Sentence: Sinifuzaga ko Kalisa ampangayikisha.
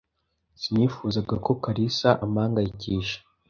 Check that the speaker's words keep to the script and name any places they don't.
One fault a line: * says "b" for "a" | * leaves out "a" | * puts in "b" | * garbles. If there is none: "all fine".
all fine